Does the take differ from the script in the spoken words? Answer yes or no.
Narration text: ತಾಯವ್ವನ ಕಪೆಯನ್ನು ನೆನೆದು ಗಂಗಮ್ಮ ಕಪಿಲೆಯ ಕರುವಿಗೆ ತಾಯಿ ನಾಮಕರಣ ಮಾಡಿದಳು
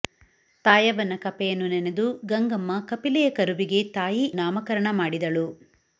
no